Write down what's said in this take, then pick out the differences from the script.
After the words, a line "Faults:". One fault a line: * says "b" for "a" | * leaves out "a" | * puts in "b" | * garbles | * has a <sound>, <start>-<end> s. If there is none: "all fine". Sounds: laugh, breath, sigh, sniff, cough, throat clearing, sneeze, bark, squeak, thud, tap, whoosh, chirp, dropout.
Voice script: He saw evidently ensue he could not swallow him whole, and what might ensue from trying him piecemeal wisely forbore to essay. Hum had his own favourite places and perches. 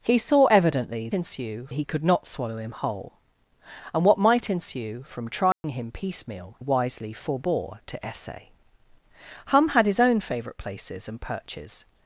He saw evidently ensue he could not swallow him whole, and what might ensue from trying him piecemeal wisely forbore to essay. Hum had his own favourite places and perches.
Faults:
* has a dropout, 5.5-5.6 s